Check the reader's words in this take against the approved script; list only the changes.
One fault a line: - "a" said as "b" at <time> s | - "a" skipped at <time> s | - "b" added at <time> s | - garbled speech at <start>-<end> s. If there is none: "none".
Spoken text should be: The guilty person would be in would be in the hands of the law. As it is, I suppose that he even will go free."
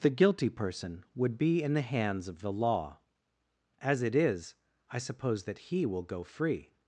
- "would be in" skipped at 1.8 s
- "even" skipped at 5.8 s